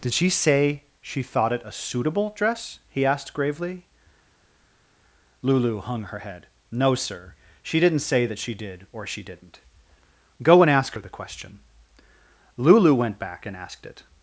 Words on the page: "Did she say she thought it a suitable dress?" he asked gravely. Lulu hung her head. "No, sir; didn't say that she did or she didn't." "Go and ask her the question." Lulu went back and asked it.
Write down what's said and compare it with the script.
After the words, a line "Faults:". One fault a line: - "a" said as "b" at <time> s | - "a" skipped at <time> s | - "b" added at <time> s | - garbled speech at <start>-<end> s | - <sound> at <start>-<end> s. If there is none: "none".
"Did she say she thought it a suitable dress?" he asked gravely. Lulu hung her head. "No, sir; she didn't say that she did or she didn't." "Go and ask her the question." Lulu went back and asked it.
Faults:
- "she" added at 7.6 s